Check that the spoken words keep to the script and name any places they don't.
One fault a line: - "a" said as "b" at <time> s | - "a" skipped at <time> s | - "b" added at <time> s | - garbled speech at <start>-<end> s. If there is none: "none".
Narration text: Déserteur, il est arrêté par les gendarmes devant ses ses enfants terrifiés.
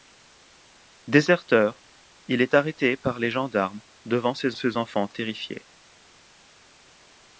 none